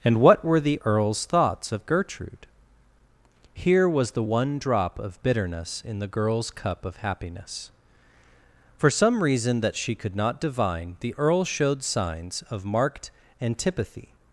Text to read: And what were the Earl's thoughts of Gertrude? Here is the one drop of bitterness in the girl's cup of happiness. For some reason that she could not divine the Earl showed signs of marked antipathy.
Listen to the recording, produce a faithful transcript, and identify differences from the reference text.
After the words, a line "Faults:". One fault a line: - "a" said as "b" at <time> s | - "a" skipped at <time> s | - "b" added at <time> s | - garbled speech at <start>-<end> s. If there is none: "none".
And what were the Earl's thoughts of Gertrude? Here was the one drop of bitterness in the girl's cup of happiness. For some reason that she could not divine the Earl showed signs of marked antipathy.
Faults:
- "is" said as "was" at 3.9 s